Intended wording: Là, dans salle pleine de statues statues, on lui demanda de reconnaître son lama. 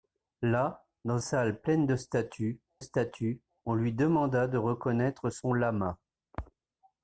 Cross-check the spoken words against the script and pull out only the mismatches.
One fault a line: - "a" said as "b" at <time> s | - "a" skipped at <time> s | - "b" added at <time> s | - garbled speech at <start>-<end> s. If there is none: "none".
none